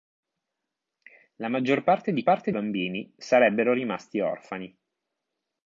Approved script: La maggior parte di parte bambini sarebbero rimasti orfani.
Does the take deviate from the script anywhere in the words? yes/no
no